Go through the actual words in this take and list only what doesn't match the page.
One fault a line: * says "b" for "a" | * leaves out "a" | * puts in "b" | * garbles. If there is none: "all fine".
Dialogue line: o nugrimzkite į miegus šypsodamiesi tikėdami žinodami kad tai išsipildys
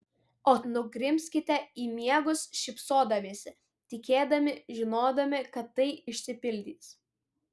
all fine